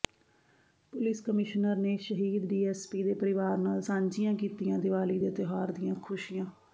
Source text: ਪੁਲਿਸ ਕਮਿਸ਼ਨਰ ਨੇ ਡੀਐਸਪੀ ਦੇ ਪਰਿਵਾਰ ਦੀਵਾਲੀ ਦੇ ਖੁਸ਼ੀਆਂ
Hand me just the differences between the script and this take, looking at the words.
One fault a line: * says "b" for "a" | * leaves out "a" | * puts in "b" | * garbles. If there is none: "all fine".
* puts in "ਸ਼ਹੀਦ"
* puts in "ਨਾਲ ਸਾਂਝੀਆਂ ਕੀਤੀਆਂ"
* puts in "ਤਿਉਹਾਰ ਦੀਆਂ"